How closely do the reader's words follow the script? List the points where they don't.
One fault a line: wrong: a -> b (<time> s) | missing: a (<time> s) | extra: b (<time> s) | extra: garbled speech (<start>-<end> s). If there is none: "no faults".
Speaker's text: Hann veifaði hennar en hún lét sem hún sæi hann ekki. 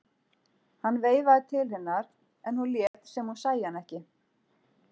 extra: til (1.5 s)